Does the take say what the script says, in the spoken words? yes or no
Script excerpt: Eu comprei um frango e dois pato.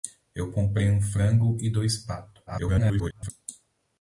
no